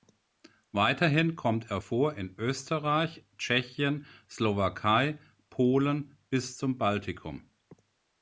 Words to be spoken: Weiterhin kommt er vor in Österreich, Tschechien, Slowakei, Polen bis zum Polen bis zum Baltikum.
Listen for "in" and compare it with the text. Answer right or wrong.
right